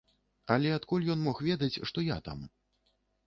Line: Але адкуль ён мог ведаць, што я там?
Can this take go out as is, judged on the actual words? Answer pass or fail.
pass